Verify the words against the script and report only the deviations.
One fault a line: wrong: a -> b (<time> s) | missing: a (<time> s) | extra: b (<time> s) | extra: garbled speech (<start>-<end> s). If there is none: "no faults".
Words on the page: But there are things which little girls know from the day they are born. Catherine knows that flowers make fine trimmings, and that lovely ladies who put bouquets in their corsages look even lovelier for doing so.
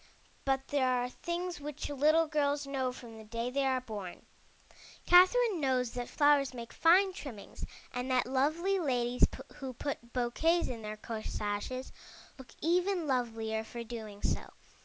no faults